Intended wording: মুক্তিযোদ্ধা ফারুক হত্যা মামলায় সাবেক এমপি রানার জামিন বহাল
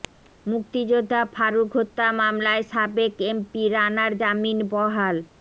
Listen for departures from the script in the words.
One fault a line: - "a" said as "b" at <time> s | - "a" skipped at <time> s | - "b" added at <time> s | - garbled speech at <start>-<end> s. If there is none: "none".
none